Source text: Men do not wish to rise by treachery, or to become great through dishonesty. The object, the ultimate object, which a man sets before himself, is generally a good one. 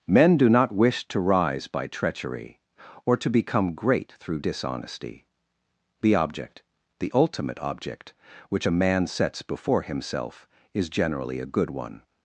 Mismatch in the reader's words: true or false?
false